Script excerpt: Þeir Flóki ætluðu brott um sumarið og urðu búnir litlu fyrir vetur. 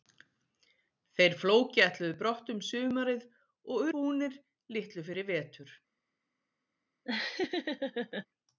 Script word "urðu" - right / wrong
wrong